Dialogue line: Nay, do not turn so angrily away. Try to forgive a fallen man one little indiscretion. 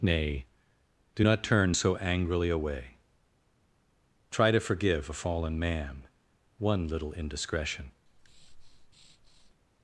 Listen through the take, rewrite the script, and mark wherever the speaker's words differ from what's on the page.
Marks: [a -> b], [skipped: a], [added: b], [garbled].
Nay, do not turn so angrily away. Try to forgive a fallen man one little indiscretion.